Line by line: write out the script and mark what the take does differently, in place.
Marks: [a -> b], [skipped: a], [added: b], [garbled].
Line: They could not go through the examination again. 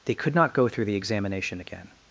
They could not go through the examination again.